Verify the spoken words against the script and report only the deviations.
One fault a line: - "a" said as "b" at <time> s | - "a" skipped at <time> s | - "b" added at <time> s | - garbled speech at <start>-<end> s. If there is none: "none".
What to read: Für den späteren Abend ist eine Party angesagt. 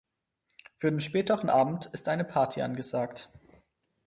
none